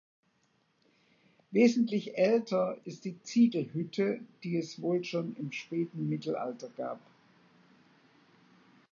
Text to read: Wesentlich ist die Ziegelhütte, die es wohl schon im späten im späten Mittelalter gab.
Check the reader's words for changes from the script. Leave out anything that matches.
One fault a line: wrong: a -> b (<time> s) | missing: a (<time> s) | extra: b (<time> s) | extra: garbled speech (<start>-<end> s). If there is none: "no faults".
extra: älter (2.2 s)
missing: im späten (6.1 s)